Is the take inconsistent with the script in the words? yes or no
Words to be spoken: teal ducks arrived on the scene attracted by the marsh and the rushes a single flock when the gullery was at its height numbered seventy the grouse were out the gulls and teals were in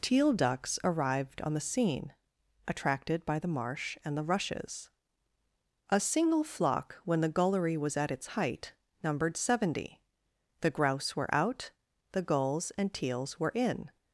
no